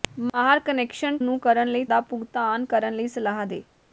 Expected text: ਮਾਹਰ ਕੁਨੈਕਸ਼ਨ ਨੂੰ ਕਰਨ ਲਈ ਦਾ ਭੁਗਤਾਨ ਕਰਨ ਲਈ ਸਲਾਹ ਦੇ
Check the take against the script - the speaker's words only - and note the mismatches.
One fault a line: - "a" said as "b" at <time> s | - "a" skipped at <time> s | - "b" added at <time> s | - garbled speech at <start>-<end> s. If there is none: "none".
none